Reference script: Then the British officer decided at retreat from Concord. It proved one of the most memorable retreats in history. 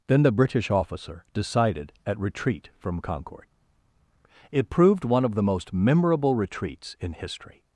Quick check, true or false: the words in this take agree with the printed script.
true